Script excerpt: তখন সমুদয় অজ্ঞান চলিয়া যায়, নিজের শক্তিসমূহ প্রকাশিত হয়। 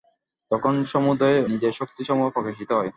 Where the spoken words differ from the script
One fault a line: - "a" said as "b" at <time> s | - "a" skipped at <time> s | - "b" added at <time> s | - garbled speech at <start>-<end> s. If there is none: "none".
- "অজ্ঞান চলিয়া যায়" skipped at 1.4 s